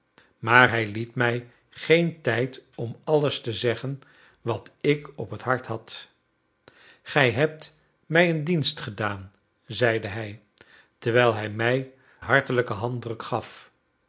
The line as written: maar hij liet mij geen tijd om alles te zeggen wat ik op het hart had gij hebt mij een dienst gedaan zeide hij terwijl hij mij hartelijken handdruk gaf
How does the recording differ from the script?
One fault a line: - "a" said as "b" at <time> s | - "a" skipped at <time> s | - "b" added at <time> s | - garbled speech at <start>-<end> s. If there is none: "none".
none